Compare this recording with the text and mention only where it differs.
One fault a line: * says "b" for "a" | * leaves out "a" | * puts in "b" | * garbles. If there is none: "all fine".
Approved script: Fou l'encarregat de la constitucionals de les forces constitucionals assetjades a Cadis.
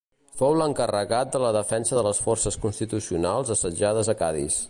* says "defensa" for "constitucionals"